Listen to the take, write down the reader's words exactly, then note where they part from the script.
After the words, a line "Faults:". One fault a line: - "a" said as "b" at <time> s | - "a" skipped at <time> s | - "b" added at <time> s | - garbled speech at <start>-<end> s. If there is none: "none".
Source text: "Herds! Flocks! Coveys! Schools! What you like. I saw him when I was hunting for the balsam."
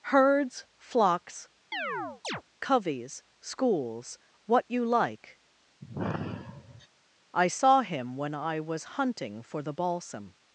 "Herds! Flocks! Coveys! Schools! What you like. I saw him when I was hunting for the balsam."
Faults:
none